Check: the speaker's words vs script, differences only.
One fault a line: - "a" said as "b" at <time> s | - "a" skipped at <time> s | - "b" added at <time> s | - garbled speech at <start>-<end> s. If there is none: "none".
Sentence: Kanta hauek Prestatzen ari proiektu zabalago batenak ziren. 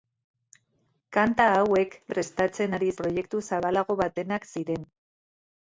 none